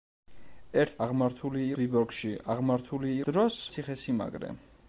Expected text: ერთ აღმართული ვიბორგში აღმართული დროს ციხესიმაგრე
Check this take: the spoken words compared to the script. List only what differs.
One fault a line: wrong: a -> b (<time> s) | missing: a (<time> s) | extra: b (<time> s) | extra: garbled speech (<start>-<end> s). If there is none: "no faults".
no faults